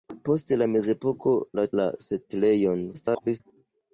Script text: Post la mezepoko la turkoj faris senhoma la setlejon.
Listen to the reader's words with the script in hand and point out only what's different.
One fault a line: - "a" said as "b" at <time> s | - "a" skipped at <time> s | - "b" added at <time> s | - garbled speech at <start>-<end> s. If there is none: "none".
- "turkoj faris senhoma" skipped at 1.6 s
- garbled speech at 2.9-3.4 s